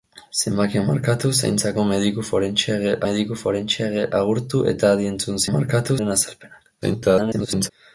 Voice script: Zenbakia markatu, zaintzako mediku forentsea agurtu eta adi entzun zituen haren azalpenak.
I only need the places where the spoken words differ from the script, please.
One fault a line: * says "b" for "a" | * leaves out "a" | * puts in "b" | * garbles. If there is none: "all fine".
* puts in "mediku forentsea"
* says "markatu" for "zituen"
* garbles